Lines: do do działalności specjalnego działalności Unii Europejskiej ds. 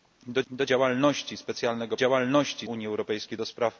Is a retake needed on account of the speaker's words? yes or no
no